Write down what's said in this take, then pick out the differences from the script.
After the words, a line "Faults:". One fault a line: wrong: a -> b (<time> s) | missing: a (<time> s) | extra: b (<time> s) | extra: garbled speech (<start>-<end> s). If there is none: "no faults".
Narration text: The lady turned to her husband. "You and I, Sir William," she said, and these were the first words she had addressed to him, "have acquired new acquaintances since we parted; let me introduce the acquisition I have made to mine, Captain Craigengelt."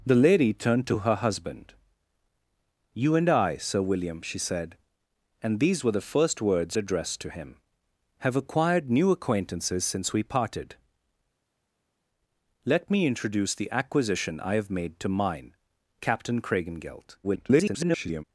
The lady turned to her husband. "You and I, Sir William," she said, and these were the first words addressed to him, "have acquired new acquaintances since we parted; let me introduce the acquisition I have made to mine, Captain Craigengelt." [garbled]
Faults:
missing: she had (6.8 s)
extra: garbled speech (17.2-18.2 s)